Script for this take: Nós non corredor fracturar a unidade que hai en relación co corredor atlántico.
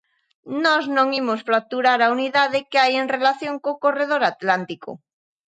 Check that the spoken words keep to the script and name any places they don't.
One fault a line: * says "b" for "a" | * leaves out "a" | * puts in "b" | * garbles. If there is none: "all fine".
* says "imos" for "corredor"